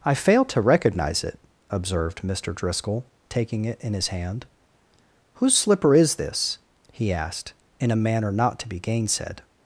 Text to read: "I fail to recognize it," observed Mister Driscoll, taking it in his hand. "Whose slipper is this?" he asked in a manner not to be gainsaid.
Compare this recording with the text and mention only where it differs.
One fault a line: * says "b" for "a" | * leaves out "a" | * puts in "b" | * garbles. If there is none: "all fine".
all fine